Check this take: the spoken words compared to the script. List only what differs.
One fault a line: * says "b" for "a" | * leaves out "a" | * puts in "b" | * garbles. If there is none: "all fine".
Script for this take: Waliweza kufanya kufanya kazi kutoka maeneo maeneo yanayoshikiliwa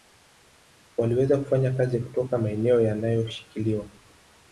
* leaves out "kufanya"
* leaves out "maeneo"